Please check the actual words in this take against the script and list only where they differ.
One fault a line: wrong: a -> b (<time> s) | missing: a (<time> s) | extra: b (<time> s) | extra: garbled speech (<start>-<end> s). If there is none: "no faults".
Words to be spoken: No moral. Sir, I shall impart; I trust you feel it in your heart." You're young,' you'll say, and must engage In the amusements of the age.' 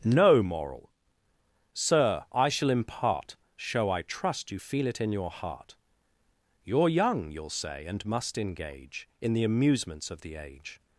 extra: show (3.5 s)